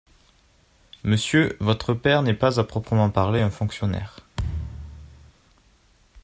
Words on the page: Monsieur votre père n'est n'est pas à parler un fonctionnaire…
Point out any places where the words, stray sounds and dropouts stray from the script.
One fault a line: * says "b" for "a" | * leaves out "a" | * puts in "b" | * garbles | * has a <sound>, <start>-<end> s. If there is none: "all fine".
* leaves out "n'est"
* puts in "proprement"
* has a thud, 4.4-5.3 s